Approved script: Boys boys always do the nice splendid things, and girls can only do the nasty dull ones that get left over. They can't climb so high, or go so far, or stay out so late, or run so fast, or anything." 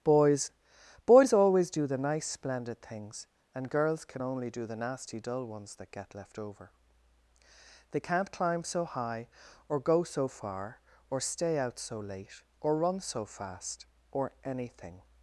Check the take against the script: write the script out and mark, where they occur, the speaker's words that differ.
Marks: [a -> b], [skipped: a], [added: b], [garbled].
Boys boys always do the nice splendid things, and girls can only do the nasty dull ones that get left over. They can't climb so high, or go so far, or stay out so late, or run so fast, or anything."